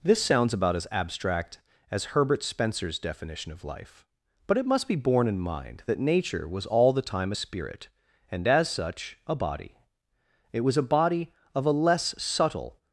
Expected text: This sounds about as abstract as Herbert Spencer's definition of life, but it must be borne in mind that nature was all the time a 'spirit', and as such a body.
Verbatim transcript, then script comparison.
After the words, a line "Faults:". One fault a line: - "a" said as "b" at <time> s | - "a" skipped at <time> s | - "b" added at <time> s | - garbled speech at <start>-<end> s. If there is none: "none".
This sounds about as abstract as Herbert Spencer's definition of life, but it must be borne in mind that nature was all the time a 'spirit', and as such a body. It was a body of a less subtle
Faults:
- "It was a body of a less subtle" added at 10.5 s